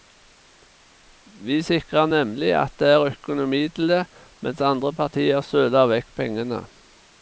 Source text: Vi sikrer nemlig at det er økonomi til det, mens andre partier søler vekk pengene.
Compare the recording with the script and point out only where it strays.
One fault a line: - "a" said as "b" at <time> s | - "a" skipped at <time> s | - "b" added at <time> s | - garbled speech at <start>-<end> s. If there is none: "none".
none